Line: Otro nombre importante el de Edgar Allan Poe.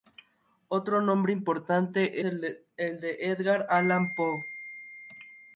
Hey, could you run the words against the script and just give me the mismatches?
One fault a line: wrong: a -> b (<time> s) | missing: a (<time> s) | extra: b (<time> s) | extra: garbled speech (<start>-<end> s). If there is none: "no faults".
no faults